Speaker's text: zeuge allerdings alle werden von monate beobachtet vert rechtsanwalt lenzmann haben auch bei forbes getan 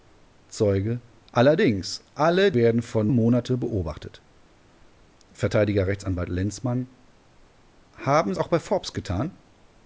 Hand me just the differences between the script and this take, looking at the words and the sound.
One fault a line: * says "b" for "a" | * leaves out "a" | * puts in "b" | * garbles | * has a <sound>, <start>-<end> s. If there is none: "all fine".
all fine